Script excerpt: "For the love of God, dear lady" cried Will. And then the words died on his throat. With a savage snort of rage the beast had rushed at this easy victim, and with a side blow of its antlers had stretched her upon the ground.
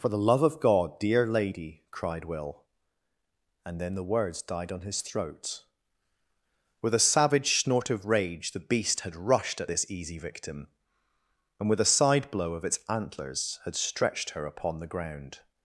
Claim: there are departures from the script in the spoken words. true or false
false